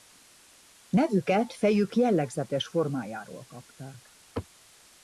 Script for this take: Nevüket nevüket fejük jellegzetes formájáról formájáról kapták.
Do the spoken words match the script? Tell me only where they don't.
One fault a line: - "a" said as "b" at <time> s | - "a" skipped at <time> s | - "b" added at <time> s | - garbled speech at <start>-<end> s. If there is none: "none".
- "nevüket" skipped at 1.5 s
- "formájáról" skipped at 3.5 s